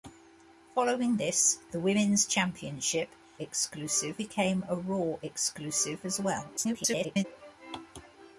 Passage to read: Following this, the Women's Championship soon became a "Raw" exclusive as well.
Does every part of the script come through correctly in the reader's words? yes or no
no